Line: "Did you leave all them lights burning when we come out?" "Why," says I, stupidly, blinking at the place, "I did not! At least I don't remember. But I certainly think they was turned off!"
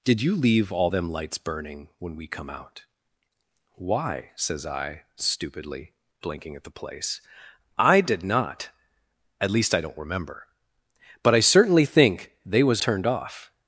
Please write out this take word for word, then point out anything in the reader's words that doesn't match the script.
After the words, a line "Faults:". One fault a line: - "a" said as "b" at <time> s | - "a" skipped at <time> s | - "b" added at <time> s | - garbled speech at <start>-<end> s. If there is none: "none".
"Did you leave all them lights burning when we come out?" "Why," says I, stupidly, blinking at the place, "I did not! At least I don't remember. But I certainly think they was turned off!"
Faults:
none